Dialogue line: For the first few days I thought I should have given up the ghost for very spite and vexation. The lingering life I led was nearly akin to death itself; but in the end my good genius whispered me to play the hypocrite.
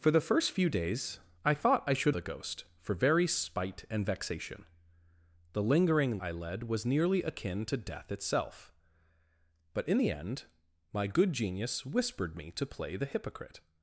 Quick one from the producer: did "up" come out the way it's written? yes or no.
no